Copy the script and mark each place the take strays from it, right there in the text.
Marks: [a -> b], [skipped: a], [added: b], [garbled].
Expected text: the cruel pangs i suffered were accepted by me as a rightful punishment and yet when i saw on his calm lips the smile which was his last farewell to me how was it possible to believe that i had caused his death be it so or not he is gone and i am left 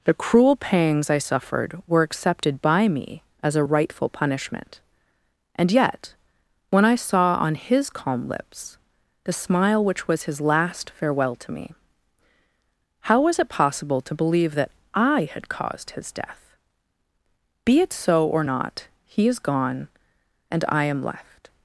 the cruel pangs i suffered were accepted by me as a rightful punishment and yet when i saw on his calm lips the smile which was his last farewell to me how was it possible to believe that i had caused his death be it so or not he is gone and i am left